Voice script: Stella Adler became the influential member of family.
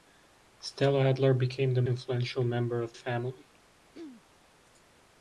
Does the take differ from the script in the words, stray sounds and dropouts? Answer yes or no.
yes